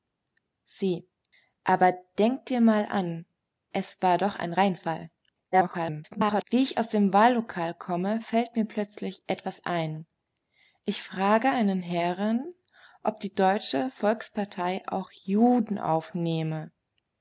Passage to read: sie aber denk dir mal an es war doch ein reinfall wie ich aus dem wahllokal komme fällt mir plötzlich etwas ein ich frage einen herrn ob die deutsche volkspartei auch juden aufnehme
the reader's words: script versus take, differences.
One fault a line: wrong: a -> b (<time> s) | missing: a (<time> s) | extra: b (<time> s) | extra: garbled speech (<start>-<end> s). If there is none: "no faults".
extra: garbled speech (5.5-6.4 s)